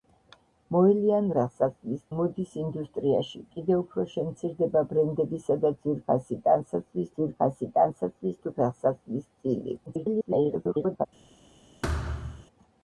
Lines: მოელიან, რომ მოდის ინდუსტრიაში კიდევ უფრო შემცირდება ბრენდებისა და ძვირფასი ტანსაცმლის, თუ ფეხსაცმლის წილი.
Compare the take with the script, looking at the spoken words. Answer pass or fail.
fail